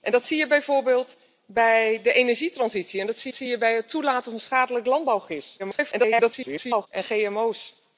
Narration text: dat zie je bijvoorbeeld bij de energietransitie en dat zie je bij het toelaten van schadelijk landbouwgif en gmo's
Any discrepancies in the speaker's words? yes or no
yes